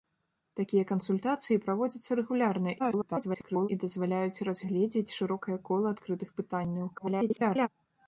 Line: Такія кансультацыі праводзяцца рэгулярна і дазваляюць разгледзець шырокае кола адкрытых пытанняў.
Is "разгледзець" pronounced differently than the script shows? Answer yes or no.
no